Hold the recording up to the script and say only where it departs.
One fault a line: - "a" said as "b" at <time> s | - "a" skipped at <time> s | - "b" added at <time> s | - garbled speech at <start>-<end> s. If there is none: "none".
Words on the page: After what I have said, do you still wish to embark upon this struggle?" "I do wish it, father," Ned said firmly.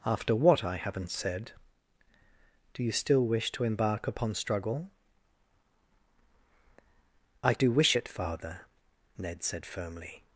- "have" said as "haven't" at 0.8 s
- "this" skipped at 4.3 s